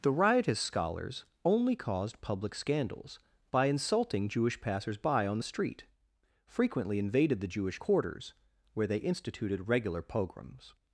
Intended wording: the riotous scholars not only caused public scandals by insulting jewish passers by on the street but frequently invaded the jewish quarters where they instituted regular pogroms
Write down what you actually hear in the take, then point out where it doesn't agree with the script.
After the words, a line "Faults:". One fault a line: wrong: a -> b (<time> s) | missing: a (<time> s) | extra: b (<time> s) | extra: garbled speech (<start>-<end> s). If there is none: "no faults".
the riotous scholars only caused public scandals by insulting jewish passers by on the street frequently invaded the jewish quarters where they instituted regular pogroms
Faults:
missing: not (1.2 s)
missing: but (5.9 s)